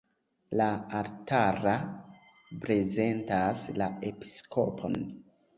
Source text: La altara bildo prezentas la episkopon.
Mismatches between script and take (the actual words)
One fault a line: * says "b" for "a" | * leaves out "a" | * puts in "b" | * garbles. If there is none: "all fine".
* leaves out "bildo"